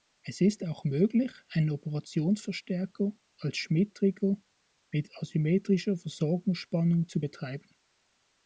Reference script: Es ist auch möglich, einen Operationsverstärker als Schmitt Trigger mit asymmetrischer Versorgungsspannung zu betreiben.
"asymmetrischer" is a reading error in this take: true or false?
false